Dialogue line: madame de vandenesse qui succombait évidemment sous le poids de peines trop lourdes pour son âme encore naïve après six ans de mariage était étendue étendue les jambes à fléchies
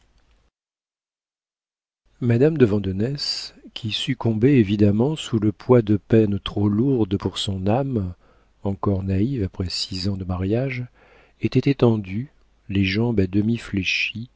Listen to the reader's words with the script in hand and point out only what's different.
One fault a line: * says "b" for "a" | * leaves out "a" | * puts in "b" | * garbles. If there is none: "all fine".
* leaves out "étendue"
* puts in "demi"